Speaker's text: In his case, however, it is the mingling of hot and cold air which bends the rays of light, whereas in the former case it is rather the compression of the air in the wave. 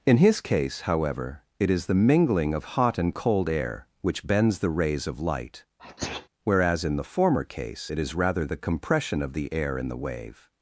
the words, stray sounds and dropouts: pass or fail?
fail